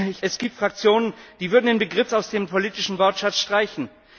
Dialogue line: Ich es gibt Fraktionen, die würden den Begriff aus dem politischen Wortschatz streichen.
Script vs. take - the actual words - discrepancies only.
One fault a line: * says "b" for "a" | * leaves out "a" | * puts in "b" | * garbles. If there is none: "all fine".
all fine